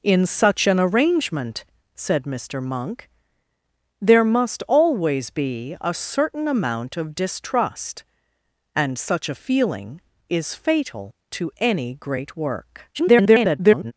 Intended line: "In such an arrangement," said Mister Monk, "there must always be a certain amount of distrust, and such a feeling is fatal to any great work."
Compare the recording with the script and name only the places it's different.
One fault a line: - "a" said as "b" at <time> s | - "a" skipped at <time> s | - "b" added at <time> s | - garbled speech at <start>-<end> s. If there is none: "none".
- garbled speech at 12.9-13.9 s